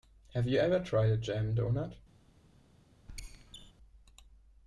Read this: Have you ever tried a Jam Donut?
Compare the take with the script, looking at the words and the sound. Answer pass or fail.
fail